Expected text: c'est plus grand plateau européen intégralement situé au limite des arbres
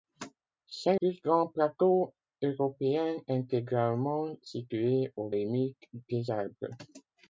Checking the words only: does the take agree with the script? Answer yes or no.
yes